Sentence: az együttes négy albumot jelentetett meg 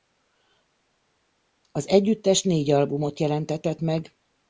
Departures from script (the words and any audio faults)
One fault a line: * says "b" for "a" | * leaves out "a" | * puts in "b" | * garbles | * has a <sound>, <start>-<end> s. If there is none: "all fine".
all fine